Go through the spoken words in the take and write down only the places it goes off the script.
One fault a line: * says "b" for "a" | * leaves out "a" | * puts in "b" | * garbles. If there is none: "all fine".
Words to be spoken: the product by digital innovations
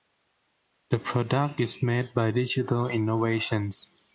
* puts in "is made"